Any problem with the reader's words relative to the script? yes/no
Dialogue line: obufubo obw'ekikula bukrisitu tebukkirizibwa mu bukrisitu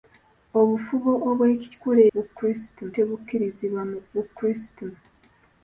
no